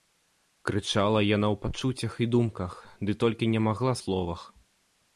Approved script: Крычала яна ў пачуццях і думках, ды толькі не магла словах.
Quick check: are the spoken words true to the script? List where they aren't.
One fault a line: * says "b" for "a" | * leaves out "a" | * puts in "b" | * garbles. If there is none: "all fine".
all fine